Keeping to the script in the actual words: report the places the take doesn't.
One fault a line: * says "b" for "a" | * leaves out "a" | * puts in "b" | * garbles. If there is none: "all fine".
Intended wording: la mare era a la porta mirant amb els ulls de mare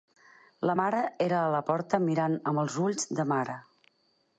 all fine